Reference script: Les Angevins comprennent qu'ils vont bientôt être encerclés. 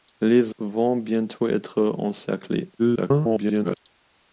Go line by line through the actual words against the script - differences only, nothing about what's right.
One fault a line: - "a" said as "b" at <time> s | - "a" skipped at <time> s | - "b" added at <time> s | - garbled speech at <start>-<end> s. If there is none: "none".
- "Angevins comprennent qu'ils" skipped at 0.6 s
- garbled speech at 2.8-3.8 s